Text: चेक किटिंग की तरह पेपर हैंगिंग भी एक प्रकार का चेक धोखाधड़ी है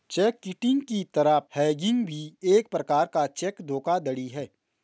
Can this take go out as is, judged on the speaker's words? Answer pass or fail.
fail